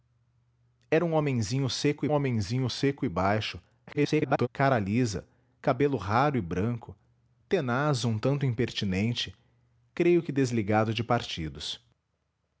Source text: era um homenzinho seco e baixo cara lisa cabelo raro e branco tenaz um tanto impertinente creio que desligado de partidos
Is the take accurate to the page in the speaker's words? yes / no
no